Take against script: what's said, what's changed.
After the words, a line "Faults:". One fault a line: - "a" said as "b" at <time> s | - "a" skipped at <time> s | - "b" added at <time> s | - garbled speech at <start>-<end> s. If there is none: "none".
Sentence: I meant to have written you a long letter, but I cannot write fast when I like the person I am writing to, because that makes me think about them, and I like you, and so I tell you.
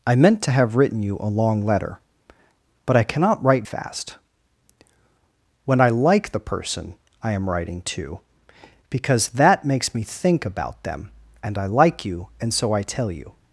I meant to have written you a long letter, but I cannot write fast when I like the person I am writing to, because that makes me think about them, and I like you, and so I tell you.
Faults:
none